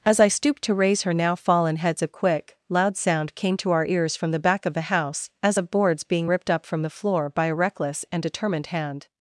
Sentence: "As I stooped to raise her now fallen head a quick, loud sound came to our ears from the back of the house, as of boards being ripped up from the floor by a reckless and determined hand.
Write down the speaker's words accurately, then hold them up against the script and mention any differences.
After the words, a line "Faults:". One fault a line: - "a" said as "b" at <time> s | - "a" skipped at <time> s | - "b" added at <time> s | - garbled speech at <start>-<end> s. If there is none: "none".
"As I stooped to raise her now fallen heads a quick, loud sound came to our ears from the back of the house, as of boards being ripped up from the floor by a reckless and determined hand.
Faults:
- "head" said as "heads" at 1.8 s